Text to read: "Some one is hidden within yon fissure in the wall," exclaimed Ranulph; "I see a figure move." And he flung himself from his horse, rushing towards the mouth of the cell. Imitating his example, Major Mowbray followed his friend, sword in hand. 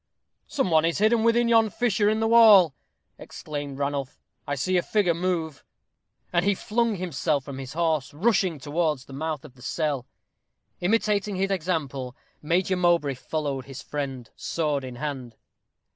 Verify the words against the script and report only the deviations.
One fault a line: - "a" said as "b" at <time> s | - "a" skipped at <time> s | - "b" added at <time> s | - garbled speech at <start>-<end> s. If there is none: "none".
none